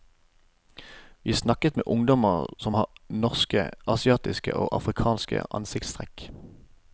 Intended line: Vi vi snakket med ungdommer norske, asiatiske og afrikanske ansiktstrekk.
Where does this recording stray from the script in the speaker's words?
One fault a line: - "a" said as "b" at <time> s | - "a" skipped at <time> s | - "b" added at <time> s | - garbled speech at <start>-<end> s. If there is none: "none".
- "vi" skipped at 1.3 s
- "som har" added at 2.6 s